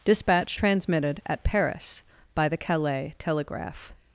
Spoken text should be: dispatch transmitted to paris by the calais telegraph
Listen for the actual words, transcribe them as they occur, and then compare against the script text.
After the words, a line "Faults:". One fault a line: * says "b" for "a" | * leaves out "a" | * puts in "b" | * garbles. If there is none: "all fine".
dispatch transmitted at paris by the calais telegraph
Faults:
* says "at" for "to"